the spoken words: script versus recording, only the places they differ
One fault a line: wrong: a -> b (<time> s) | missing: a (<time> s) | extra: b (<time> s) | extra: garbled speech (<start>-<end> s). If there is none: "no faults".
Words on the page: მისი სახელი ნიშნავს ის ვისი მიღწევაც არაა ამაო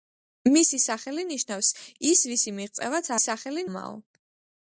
wrong: არაა -> სახელი (3.2 s)